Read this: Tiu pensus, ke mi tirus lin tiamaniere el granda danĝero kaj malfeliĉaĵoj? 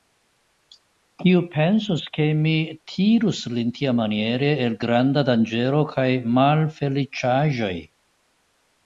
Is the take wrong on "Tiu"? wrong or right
wrong